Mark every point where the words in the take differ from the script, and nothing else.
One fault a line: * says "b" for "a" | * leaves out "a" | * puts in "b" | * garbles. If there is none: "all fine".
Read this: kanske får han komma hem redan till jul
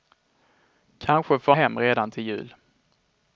* leaves out "han komma"